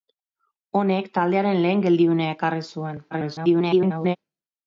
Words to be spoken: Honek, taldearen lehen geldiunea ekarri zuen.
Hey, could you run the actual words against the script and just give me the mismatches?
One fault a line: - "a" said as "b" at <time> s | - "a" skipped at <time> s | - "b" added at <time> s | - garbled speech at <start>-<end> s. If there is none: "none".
- garbled speech at 3.1-4.2 s